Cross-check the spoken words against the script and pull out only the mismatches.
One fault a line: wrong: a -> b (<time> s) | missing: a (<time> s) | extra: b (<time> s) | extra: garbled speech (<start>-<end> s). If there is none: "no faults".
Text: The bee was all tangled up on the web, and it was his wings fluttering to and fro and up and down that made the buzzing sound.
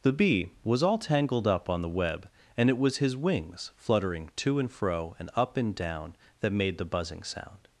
no faults